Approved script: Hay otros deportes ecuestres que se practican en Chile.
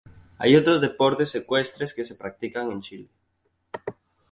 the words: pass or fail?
pass